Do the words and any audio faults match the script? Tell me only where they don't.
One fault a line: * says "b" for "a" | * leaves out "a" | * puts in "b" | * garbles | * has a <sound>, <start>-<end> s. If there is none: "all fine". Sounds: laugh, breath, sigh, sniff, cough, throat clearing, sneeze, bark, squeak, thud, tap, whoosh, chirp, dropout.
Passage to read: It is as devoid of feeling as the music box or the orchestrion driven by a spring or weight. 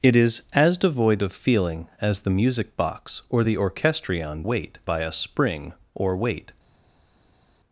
* says "weight" for "driven"